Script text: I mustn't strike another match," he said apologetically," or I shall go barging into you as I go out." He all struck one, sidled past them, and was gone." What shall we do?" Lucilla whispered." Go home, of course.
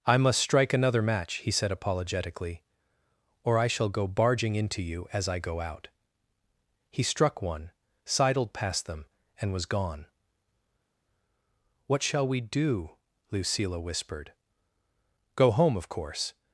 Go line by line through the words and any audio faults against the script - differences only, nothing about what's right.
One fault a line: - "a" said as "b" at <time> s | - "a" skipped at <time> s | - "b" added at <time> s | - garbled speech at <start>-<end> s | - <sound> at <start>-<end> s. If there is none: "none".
- "mustn't" said as "must" at 0.2 s
- "all" skipped at 7.0 s